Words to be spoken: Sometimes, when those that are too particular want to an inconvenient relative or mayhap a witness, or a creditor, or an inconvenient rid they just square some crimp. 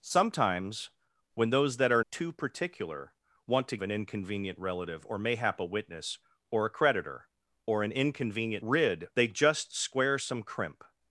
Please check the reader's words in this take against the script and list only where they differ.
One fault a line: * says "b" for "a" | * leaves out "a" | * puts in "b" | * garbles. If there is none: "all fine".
all fine